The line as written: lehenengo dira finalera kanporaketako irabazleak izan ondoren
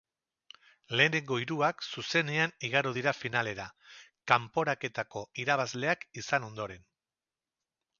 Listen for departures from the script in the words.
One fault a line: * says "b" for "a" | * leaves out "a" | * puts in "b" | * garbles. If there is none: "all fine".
* puts in "hiruak zuzenean igaro"